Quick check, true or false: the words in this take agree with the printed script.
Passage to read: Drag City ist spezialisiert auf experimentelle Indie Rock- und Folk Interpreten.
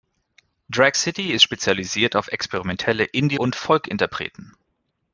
false